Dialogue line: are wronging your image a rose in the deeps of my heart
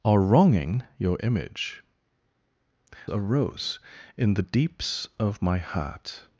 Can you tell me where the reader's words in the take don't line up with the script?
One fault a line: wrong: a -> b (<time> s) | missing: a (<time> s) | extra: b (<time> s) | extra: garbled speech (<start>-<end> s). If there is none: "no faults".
no faults